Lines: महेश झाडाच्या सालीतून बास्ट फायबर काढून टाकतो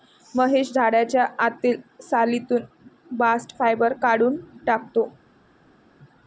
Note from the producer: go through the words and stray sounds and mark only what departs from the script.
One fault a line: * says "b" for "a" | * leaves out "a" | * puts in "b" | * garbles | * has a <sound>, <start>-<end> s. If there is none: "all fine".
* puts in "आतील"